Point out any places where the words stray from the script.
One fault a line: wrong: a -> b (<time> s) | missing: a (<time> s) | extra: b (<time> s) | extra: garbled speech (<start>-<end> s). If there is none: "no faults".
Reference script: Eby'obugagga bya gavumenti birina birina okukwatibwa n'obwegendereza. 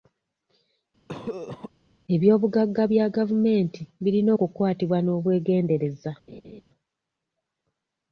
missing: birina (4.3 s)